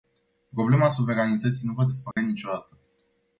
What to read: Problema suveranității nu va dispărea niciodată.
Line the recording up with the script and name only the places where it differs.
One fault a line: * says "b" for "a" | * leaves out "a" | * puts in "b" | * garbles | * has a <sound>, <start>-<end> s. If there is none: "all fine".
* has a dropout, 2.1-2.2 s